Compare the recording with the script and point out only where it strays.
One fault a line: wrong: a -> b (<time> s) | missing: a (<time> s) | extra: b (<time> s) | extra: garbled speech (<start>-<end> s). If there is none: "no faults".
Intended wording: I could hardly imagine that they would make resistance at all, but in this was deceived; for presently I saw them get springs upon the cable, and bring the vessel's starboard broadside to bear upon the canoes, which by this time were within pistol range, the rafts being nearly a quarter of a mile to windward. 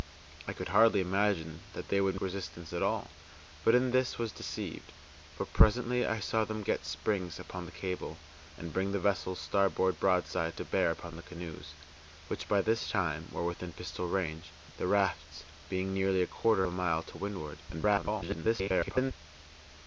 missing: make (2.1 s)
missing: of (16.6 s)
extra: garbled speech (17.7-19.1 s)